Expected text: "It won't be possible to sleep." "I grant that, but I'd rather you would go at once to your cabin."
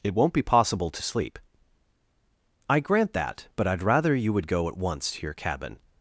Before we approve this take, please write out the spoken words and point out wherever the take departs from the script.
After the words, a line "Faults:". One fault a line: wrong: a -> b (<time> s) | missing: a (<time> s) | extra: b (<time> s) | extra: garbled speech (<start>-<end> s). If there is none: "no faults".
"It won't be possible to sleep." "I grant that, but I'd rather you would go at once to your cabin."
Faults:
no faults